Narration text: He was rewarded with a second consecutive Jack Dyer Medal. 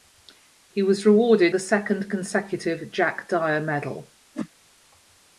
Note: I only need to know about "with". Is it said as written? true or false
false